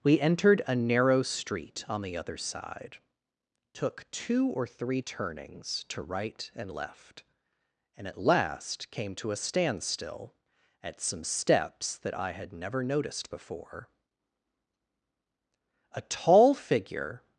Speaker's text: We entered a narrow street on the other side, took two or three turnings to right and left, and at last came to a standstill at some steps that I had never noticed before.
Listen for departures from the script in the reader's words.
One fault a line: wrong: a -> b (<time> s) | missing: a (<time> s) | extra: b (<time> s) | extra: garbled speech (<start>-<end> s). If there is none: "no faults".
extra: A tall figure (15.9 s)